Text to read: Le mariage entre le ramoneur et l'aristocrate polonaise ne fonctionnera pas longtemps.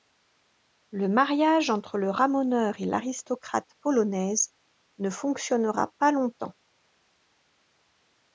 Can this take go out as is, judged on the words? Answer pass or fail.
pass